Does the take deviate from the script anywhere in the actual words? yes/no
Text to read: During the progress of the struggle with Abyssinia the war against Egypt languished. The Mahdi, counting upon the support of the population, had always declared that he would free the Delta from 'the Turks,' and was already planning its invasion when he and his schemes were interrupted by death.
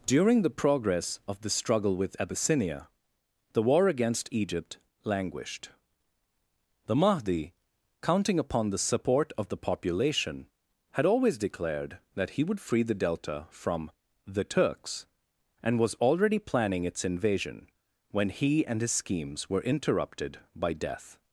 no